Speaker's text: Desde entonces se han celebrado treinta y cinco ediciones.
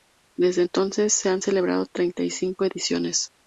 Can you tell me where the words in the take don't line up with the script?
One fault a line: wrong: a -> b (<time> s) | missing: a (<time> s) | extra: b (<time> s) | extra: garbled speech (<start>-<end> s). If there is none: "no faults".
no faults